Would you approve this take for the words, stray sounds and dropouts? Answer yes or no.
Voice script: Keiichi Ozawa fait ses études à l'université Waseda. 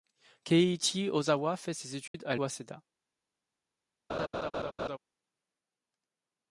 no